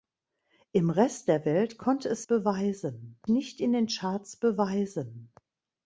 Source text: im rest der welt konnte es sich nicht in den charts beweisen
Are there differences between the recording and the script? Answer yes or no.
yes